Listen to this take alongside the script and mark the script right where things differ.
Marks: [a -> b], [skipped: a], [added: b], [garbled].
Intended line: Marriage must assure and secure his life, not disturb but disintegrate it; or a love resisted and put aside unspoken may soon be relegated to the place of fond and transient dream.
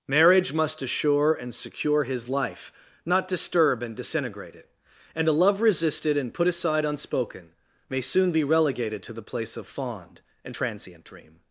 Marriage must assure and secure his life, not disturb [but -> and] disintegrate it; [or -> and] a love resisted and put aside unspoken may soon be relegated to the place of fond and transient dream.